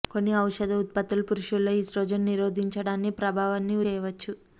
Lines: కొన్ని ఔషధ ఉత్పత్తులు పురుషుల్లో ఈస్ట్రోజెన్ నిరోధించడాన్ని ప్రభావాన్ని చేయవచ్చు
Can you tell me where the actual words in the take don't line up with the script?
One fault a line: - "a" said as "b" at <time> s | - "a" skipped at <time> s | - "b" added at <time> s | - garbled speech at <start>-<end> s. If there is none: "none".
none